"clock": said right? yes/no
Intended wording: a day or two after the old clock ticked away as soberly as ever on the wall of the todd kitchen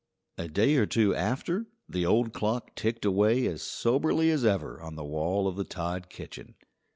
yes